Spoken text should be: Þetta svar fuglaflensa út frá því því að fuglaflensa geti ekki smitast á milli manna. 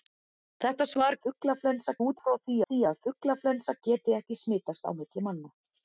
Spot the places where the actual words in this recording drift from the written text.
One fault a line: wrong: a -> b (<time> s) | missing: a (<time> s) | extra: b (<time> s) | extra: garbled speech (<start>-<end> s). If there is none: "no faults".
no faults